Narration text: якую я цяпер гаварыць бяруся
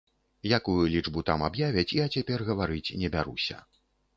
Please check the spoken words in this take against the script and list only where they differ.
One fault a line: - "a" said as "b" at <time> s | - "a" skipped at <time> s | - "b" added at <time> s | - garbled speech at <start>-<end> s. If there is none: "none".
- "лічбу там аб'явяць" added at 0.9 s
- "не" added at 3.0 s